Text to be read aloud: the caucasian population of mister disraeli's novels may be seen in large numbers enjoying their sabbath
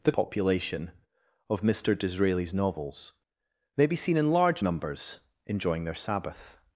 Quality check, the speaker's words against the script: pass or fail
fail